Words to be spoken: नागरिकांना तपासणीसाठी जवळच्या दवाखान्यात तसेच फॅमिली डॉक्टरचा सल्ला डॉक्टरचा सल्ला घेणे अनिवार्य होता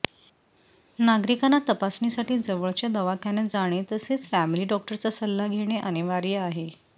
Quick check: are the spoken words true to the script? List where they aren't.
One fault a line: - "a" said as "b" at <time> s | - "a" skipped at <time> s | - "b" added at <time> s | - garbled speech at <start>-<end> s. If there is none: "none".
- "जाणे" added at 3.5 s
- "डॉक्टरचा सल्ला" skipped at 5.5 s
- "होता" said as "आहे" at 6.4 s